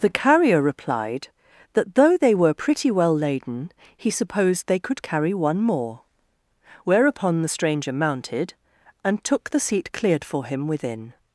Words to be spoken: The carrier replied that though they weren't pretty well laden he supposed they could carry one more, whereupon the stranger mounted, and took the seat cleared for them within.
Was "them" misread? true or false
true